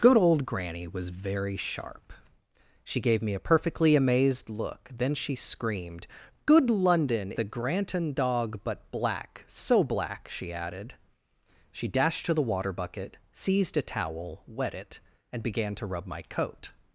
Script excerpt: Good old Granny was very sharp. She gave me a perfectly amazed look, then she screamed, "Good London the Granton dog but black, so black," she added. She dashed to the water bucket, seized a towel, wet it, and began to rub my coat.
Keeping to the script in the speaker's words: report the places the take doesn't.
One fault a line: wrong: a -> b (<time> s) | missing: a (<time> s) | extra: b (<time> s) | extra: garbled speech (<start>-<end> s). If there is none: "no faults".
no faults